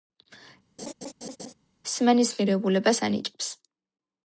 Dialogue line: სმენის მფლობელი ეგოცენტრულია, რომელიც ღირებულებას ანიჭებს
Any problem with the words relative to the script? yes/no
yes